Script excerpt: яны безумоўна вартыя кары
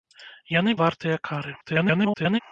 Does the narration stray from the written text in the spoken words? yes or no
yes